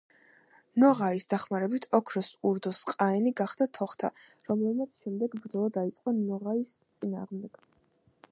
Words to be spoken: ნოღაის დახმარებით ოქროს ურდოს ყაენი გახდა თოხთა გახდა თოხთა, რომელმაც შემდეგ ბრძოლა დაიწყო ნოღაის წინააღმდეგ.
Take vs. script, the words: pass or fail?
fail